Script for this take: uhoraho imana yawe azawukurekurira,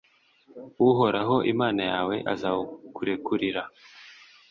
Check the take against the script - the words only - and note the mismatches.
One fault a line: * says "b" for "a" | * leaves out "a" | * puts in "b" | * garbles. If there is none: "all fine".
all fine